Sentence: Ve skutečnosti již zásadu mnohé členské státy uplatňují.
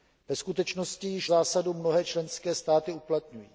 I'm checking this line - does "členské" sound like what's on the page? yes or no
yes